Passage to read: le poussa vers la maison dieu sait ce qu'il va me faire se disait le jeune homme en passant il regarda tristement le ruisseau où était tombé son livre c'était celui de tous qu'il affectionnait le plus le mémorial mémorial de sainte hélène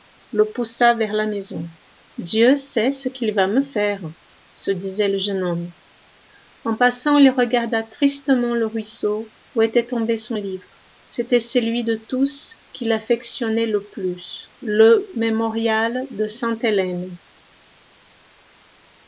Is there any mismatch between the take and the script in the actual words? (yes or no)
yes